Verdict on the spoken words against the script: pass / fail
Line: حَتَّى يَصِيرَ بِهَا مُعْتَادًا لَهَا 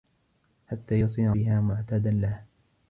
pass